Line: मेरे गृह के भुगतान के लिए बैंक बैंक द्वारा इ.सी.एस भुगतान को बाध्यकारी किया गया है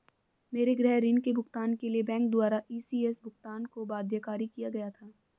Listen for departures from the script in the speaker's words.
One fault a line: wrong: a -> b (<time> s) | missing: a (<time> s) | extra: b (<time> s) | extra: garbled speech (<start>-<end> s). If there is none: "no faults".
extra: ऋण (1.0 s)
missing: बैंक (2.3 s)
wrong: है -> था (4.9 s)